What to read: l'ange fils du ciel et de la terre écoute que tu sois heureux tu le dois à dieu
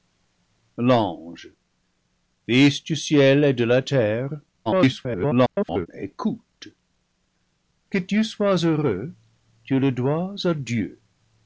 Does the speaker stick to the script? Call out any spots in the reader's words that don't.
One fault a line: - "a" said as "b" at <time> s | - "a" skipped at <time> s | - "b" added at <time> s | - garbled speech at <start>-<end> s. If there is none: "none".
- garbled speech at 4.7-5.9 s